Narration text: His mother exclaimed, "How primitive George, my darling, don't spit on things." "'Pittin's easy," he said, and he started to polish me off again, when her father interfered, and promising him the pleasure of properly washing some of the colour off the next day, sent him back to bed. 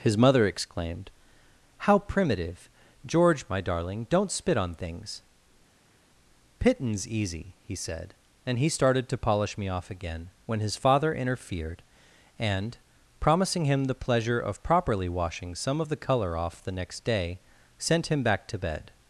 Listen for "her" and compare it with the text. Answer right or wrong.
wrong